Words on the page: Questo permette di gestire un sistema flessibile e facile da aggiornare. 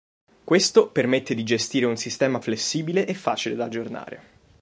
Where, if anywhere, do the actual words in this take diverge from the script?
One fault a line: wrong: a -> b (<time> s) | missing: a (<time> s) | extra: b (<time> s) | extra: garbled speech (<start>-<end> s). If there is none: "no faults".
no faults